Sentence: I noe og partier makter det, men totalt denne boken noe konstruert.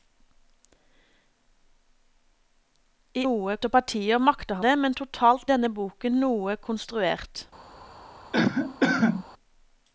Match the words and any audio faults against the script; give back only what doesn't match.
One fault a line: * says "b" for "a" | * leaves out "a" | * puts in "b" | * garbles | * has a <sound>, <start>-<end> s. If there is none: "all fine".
* has a cough, 8.3-9.2 s